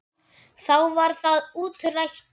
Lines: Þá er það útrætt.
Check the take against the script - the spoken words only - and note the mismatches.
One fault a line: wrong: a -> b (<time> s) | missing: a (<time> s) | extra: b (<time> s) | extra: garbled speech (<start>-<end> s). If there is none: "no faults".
wrong: er -> var (1.0 s)